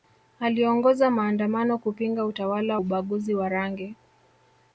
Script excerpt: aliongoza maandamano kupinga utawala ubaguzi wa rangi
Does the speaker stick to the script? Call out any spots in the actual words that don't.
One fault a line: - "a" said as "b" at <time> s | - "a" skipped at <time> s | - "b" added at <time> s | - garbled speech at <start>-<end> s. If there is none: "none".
none